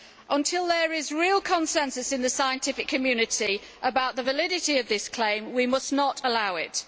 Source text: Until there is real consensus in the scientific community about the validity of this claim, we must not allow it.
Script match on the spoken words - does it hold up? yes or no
yes